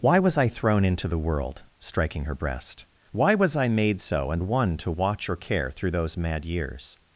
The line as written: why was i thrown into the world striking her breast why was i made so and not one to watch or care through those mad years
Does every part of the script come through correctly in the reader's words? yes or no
no